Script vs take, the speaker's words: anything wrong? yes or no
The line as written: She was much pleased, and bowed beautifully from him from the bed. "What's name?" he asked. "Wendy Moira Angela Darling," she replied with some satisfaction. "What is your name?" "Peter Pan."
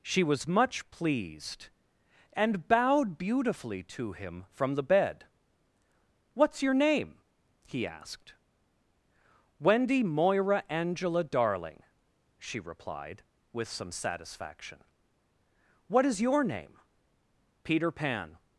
yes